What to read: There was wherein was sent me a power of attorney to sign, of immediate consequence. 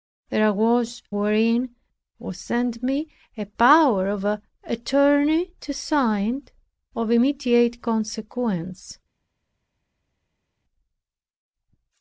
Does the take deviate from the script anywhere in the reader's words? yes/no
no